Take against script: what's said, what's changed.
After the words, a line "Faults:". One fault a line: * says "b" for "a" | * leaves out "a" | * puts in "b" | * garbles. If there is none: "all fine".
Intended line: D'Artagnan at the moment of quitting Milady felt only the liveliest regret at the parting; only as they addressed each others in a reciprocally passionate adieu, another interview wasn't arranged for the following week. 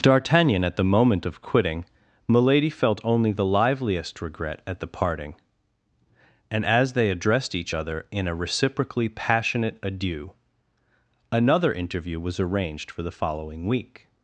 D'Artagnan at the moment of quitting Milady felt only the liveliest regret at the parting; and as they addressed each other in a reciprocally passionate adieu, another interview was arranged for the following week.
Faults:
* says "and" for "only"
* says "other" for "others"
* says "was" for "wasn't"